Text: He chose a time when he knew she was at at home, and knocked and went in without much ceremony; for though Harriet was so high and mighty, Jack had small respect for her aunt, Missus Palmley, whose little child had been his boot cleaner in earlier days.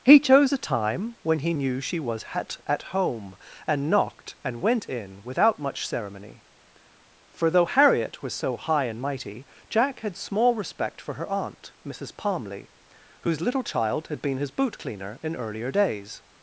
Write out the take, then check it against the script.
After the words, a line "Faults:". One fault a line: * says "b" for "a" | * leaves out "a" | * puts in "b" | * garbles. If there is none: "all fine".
He chose a time when he knew she was at at home, and knocked and went in without much ceremony; for though Harriet was so high and mighty, Jack had small respect for her aunt, Missus Palmley, whose little child had been his boot cleaner in earlier days.
Faults:
all fine